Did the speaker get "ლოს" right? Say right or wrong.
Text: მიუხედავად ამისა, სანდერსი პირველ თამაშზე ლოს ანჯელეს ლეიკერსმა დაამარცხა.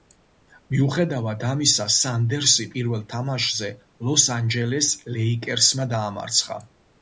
right